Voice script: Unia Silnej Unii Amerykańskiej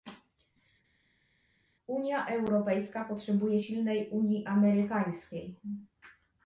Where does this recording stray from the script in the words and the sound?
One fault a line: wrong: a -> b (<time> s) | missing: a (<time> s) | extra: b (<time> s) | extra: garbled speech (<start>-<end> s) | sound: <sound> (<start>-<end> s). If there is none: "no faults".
extra: Europejska potrzebuje (2.3 s)